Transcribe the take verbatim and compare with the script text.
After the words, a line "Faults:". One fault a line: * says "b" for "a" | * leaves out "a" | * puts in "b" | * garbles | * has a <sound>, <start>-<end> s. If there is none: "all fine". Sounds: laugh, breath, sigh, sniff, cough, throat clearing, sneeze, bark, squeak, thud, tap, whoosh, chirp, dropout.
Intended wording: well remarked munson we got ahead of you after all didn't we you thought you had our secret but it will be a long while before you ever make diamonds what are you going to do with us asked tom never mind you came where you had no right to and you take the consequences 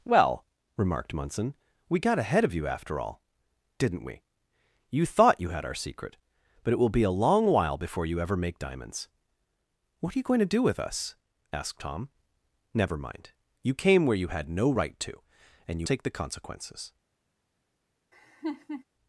well remarked munson we got ahead of you after all didn't we you thought you had our secret but it will be a long while before you ever make diamonds what are you going to do with us asked tom never mind you came where you had no right to and you take the consequences
Faults:
* has a laugh, 18.1-18.8 s